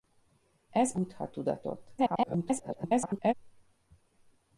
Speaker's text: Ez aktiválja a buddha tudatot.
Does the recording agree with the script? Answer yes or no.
no